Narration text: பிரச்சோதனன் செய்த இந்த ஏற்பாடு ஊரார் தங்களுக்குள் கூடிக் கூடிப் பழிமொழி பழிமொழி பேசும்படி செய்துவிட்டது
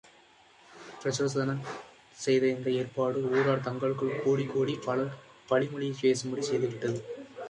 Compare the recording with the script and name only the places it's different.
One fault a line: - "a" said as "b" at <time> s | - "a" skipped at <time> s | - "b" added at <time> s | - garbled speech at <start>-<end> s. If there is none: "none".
- "பழிமொழி" skipped at 5.9 s